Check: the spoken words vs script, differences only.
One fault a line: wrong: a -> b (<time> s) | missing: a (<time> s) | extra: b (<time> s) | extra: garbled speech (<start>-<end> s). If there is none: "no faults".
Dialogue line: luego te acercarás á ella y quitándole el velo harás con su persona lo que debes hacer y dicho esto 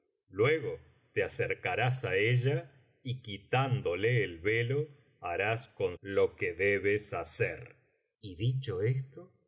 missing: su persona (6.0 s)